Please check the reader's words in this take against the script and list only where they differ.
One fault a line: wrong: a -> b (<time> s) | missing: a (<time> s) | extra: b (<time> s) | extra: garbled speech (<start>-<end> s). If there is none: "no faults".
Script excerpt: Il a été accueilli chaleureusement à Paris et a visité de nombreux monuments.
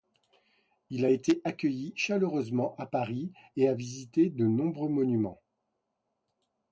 no faults